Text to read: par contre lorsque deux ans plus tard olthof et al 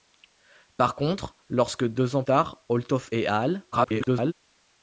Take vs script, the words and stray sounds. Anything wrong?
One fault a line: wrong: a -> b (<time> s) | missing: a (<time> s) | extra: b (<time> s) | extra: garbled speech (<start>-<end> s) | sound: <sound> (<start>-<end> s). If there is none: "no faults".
missing: plus (2.2 s)
extra: garbled speech (3.7-4.3 s)